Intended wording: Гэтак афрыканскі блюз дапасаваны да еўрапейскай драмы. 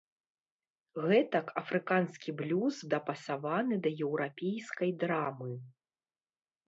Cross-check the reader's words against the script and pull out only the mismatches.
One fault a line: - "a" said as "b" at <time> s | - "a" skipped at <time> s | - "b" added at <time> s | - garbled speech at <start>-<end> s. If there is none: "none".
none